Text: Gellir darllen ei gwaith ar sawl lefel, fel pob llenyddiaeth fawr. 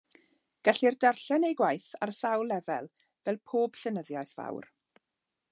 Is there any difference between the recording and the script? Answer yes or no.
no